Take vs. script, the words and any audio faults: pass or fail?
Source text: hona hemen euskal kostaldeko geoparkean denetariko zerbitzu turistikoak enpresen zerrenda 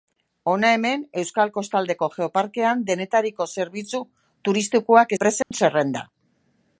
fail